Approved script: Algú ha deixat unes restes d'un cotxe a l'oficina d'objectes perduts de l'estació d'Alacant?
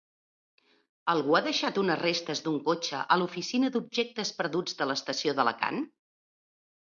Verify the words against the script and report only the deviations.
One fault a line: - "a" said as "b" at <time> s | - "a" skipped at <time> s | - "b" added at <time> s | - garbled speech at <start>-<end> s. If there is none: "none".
none